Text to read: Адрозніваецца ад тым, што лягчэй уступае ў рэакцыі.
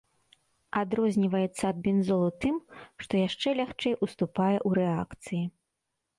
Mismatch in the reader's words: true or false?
true